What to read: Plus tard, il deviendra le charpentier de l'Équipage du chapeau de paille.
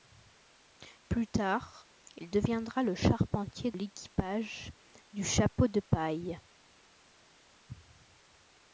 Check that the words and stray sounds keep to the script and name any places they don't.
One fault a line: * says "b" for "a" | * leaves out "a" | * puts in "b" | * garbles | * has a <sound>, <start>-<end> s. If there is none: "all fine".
* leaves out "de"